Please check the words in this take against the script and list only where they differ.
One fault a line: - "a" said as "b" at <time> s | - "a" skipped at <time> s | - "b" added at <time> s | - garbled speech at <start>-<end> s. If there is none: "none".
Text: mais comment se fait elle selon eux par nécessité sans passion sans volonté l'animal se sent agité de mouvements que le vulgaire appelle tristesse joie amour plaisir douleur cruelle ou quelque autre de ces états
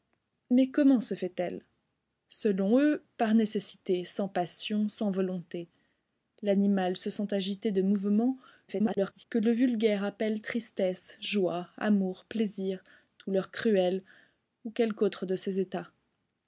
- garbled speech at 8.7-9.2 s